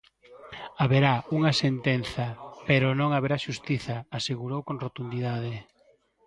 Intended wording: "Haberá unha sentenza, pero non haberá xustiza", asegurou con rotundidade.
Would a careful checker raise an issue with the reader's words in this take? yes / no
no